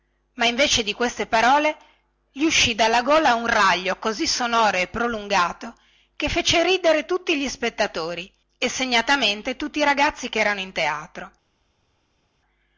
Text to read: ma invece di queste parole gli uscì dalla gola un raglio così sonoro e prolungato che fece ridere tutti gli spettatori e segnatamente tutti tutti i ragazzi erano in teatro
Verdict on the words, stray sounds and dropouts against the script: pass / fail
fail